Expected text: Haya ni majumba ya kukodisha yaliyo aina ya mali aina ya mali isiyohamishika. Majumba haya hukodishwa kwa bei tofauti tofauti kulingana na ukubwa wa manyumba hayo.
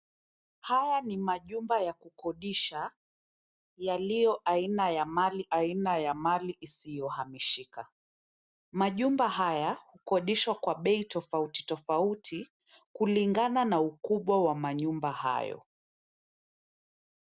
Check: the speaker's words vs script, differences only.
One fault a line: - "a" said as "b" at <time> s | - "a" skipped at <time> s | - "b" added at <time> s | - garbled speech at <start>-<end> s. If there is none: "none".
none